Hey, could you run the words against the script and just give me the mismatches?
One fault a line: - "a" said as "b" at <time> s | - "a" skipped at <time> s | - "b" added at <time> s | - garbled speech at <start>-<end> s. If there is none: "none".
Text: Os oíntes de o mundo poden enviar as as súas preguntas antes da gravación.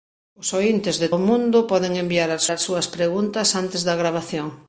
none